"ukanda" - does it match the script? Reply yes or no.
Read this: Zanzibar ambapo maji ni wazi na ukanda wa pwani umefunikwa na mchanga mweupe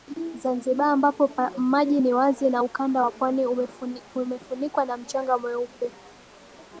yes